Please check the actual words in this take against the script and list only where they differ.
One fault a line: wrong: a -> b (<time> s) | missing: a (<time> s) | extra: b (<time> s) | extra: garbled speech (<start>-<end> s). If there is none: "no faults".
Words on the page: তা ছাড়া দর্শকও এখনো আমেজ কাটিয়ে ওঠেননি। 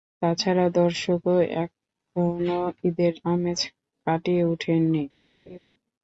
extra: ঈদের (2.9 s)